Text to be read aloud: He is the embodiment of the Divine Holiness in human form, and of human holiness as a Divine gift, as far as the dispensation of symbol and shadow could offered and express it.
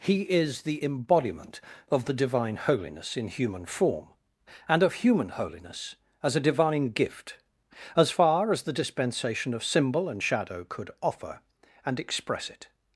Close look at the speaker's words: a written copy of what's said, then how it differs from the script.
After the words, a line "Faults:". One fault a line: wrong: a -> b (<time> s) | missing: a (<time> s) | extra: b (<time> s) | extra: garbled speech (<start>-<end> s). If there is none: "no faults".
He is the embodiment of the Divine Holiness in human form, and of human holiness as a Divine gift, as far as the dispensation of symbol and shadow could offer and express it.
Faults:
wrong: offered -> offer (11.0 s)